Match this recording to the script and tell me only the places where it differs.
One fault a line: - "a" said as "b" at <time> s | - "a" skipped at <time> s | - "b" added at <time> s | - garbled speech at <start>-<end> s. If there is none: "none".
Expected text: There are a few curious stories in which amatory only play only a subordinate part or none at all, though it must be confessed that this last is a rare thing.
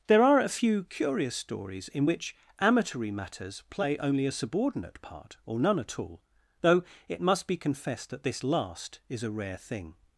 - "only" said as "matters" at 3.1 s